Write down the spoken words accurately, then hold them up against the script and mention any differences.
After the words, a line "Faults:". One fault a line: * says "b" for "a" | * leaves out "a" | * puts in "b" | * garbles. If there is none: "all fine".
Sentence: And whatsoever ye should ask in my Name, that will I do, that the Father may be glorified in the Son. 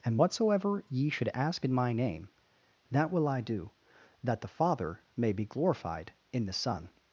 And whatsoever ye should ask in my Name, that will I do, that the Father may be glorified in the Son.
Faults:
all fine